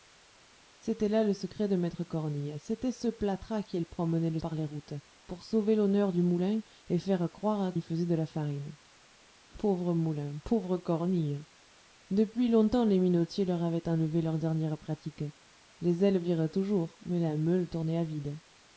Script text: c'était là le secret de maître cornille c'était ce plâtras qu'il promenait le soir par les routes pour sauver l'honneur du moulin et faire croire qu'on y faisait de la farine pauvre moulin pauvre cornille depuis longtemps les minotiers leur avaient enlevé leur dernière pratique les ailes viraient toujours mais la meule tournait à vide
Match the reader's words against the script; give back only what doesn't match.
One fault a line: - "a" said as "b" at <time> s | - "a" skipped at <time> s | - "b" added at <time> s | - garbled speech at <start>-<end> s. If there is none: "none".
- "soir" skipped at 4.4 s
- "qu'on" skipped at 7.7 s